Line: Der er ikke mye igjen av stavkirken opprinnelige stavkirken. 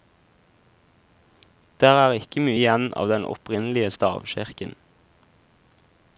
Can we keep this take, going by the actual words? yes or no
no